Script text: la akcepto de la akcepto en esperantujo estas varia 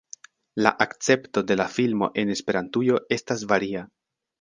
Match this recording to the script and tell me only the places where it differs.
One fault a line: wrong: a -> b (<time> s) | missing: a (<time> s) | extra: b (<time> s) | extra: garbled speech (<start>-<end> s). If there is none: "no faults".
wrong: akcepto -> filmo (1.8 s)